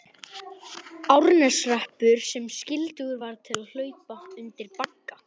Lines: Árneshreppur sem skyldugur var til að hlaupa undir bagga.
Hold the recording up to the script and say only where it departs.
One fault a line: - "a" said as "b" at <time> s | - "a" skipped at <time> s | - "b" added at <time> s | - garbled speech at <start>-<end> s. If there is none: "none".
none